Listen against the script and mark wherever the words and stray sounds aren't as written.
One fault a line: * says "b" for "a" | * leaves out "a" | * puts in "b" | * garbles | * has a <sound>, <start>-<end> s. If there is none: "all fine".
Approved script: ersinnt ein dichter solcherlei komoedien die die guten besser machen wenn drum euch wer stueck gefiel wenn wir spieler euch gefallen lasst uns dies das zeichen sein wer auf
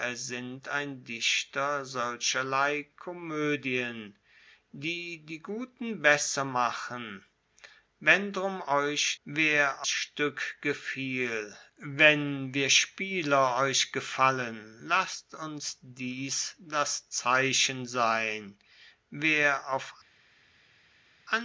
all fine